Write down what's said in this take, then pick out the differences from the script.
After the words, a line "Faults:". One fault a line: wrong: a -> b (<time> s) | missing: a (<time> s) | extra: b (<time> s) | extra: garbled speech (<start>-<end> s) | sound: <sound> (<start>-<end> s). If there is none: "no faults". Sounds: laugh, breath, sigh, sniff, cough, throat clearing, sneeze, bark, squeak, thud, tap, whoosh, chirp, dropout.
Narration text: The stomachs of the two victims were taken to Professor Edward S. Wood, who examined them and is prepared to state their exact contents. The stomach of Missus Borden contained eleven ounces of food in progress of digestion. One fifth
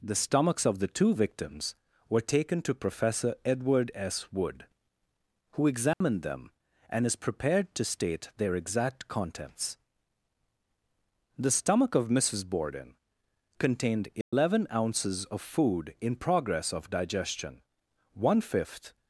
The stomachs of the two victims were taken to Professor Edward S. Wood, who examined them and is prepared to state their exact contents. The stomach of Missus Borden contained eleven ounces of food in progress of digestion. One fifth
Faults:
sound: dropout (5.9-6.0 s)
sound: dropout (14.2-14.3 s)